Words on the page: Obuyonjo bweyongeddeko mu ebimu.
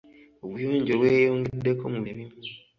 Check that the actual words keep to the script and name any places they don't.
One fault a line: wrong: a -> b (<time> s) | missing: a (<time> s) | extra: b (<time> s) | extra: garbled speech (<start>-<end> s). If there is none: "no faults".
no faults